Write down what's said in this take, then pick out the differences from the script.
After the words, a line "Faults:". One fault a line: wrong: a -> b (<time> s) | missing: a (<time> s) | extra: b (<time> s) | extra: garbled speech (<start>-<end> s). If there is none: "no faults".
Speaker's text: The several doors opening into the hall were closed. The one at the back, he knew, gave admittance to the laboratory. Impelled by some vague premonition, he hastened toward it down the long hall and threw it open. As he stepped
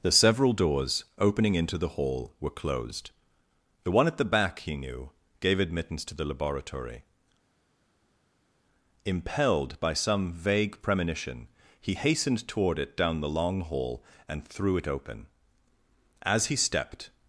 The several doors opening into the hall were closed. The one at the back, he knew, gave admittance to the laboratory. Impelled by some vague premonition, he hastened toward it down the long hall and threw it open. As he stepped
Faults:
no faults